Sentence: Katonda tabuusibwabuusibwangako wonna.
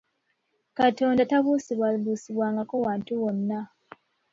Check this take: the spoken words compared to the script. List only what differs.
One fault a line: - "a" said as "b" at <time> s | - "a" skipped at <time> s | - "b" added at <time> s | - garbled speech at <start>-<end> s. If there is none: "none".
- "wantu" added at 2.8 s